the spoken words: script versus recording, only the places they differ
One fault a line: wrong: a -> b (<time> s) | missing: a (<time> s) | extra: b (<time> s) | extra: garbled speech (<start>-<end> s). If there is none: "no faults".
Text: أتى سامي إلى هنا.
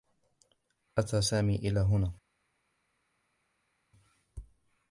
no faults